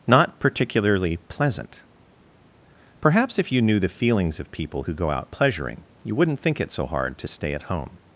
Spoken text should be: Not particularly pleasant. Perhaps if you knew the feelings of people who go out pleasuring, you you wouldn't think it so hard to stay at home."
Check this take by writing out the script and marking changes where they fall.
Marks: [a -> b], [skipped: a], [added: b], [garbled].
Not particularly pleasant. Perhaps if you knew the feelings of people who go out pleasuring, you [skipped: you] wouldn't think it so hard to stay at home."